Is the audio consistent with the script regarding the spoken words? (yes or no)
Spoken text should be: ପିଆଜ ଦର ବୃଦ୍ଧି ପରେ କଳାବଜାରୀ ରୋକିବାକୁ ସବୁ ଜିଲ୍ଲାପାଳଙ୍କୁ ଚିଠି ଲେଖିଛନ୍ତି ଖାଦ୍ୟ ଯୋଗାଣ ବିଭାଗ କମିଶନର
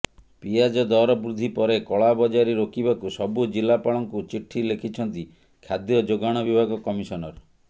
yes